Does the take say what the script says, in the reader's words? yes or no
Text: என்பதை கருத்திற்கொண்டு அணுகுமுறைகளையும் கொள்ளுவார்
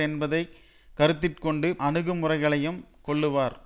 yes